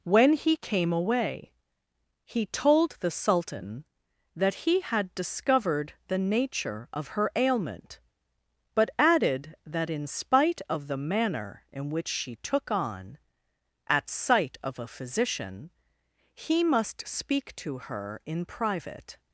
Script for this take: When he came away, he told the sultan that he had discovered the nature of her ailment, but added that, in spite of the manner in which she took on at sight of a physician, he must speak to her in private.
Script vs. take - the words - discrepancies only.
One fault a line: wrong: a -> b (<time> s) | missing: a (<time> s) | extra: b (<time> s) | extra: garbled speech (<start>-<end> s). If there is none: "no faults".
no faults